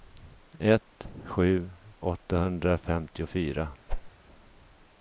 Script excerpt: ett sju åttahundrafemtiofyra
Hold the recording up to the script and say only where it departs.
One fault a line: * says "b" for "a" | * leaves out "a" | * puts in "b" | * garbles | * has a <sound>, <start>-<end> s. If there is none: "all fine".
* has a whoosh, 3.9-4.1 s